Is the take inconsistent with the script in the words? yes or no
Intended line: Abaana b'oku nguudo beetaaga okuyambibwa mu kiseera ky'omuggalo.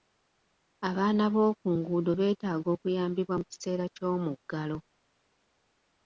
no